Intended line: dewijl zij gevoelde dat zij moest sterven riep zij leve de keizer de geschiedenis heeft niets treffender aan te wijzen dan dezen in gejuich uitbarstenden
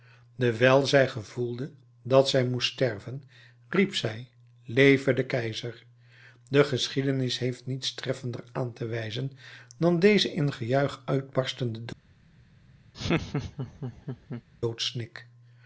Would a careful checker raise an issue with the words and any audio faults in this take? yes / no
yes